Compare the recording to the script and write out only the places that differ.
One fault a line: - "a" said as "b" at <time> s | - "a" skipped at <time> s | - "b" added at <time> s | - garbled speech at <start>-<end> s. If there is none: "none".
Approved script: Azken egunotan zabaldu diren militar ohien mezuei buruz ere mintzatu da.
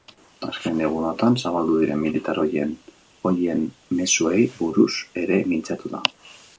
none